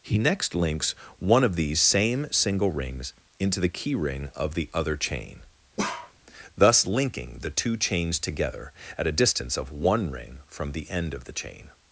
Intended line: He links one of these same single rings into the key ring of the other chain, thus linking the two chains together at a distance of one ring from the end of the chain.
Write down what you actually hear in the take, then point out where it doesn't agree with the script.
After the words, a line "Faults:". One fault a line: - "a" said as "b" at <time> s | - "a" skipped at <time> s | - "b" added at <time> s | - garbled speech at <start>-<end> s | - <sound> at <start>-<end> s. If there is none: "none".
He next links one of these same single rings into the key ring of the other chain, thus linking the two chains together at a distance of one ring from the end of the chain.
Faults:
- "next" added at 0.2 s
- bark at 5.8-6.1 s